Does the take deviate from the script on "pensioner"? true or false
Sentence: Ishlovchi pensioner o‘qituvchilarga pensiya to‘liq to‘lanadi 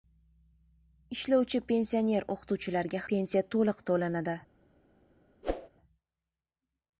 false